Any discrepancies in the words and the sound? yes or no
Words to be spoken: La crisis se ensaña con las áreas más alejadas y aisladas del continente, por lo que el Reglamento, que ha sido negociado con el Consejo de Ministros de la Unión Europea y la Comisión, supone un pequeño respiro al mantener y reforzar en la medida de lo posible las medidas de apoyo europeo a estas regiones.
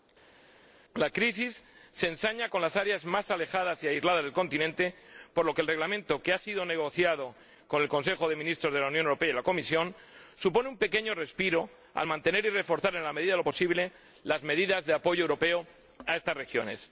no